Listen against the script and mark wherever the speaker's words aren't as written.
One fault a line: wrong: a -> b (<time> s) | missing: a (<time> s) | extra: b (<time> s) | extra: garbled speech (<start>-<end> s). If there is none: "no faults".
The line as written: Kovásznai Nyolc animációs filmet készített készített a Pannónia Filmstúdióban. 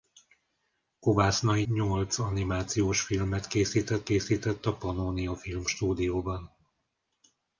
no faults